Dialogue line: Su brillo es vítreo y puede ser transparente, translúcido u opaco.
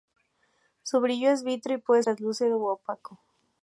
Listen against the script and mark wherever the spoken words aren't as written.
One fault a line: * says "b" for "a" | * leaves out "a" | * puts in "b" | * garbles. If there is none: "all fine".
* leaves out "ser transparente"